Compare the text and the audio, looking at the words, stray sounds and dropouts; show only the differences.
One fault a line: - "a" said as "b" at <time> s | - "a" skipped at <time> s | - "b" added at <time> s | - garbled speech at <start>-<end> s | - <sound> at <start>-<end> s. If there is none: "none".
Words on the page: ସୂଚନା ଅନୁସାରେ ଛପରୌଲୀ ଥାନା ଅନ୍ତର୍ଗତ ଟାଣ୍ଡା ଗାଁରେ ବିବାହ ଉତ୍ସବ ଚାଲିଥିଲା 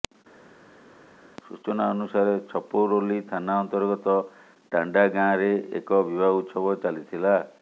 - "ଏକ" added at 5.8 s